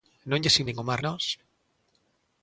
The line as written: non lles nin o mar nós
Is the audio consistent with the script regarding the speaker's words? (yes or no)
yes